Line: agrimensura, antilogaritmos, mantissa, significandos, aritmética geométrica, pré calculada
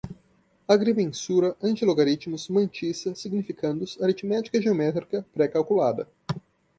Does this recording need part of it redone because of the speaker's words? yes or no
no